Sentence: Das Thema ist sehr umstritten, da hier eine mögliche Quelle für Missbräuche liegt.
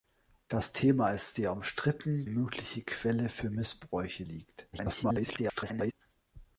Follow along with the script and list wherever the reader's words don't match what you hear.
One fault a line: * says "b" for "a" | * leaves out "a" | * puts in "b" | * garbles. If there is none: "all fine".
* leaves out "da hier eine"
* garbles